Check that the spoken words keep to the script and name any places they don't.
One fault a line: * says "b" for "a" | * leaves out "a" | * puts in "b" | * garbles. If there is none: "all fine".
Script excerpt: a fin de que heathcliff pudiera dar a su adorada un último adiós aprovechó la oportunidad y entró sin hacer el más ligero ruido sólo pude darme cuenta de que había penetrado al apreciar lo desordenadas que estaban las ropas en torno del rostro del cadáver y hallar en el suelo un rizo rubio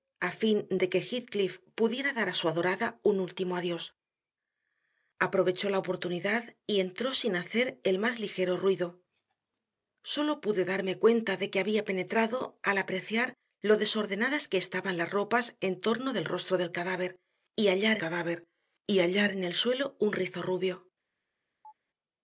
* puts in "cadáver y hallar"